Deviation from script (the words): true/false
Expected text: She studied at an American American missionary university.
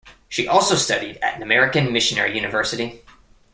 true